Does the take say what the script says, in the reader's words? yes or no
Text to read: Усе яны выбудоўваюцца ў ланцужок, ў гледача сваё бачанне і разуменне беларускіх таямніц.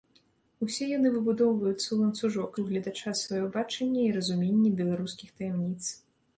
yes